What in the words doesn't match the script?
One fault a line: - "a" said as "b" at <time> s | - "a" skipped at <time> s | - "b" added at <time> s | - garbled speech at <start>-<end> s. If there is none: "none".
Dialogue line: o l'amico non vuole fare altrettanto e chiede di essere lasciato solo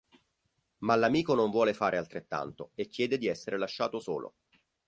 - "o" said as "ma" at 0.8 s